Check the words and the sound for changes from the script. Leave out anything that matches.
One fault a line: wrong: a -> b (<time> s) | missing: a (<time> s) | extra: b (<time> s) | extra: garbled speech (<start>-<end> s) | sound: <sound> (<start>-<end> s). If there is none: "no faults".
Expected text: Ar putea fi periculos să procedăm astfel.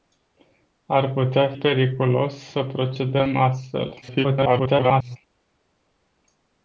missing: fi (1.5 s)
extra: garbled speech (4.0-5.2 s)